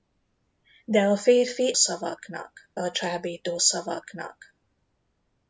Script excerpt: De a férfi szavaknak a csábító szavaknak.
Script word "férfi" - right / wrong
right